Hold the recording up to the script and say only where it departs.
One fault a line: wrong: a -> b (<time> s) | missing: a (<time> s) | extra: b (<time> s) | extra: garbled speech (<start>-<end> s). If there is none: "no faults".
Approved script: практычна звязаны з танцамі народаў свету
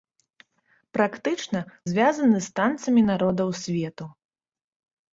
no faults